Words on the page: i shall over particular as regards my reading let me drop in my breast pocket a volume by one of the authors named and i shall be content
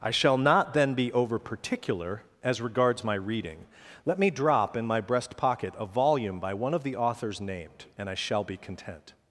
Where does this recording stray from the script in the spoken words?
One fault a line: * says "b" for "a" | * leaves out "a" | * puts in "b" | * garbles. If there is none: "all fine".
* puts in "not then be"